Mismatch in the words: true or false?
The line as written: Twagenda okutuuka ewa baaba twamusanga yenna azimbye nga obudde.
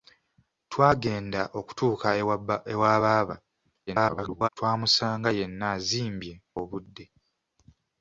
true